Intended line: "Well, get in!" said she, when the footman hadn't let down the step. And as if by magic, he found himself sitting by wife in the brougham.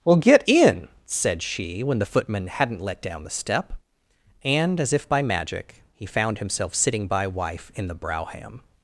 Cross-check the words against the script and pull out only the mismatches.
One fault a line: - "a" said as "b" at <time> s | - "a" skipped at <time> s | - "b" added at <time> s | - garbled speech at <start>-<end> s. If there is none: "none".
none